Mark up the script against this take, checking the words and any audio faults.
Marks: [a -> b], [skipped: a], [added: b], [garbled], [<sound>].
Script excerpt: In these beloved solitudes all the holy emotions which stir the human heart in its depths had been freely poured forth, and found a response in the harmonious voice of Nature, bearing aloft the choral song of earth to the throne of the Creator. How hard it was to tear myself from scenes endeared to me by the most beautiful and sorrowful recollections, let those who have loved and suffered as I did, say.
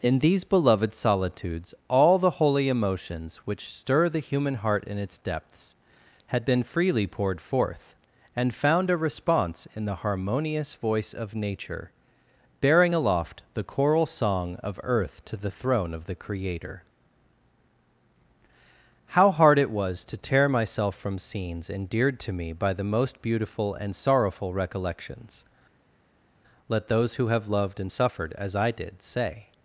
In these beloved solitudes all the holy emotions which stir the human heart in its depths had been freely poured forth, and found a response in the harmonious voice of Nature, bearing aloft the choral song of earth to the throne of the Creator. How hard it was to tear myself from scenes endeared to me by the most beautiful and sorrowful recollections, let those who have loved and suffered as I did, say.